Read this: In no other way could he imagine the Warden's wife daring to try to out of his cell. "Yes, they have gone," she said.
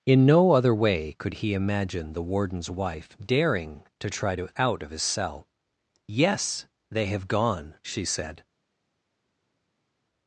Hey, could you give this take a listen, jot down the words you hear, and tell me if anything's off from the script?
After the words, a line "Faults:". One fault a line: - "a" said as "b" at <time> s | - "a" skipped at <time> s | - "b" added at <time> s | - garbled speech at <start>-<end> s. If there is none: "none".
In no other way could he imagine the Warden's wife daring to try to out of his cell. "Yes, they have gone," she said.
Faults:
none